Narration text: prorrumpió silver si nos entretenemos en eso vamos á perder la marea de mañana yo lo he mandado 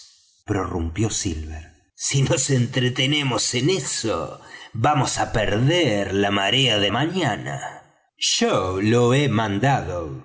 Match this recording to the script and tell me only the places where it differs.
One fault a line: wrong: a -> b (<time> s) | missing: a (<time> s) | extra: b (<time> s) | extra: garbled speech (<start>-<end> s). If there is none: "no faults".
no faults